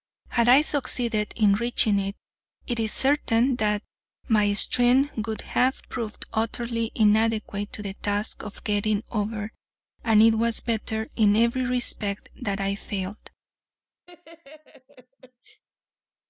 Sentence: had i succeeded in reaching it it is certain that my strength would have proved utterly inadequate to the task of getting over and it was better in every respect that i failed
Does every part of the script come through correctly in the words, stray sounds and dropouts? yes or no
no